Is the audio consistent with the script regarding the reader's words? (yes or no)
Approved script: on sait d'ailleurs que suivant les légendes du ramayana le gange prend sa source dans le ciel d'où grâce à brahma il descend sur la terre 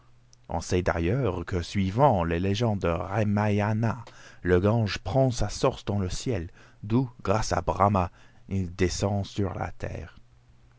yes